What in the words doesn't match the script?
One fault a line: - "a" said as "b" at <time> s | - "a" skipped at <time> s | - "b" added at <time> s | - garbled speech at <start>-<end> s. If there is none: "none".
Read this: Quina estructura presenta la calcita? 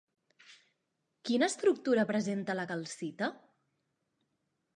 none